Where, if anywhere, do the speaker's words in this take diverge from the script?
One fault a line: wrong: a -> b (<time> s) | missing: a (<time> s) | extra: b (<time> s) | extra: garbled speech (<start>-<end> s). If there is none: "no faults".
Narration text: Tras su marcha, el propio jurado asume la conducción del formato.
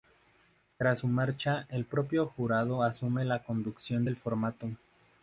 no faults